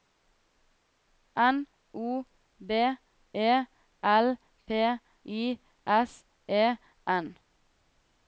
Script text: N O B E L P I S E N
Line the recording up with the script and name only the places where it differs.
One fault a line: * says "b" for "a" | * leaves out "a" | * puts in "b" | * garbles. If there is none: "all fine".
all fine